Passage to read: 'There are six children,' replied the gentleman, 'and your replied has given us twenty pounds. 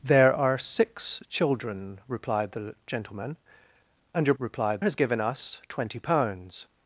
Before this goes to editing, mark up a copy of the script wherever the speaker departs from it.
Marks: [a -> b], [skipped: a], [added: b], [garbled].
'There are six children,' replied the gentleman, 'and your replied has given us twenty pounds.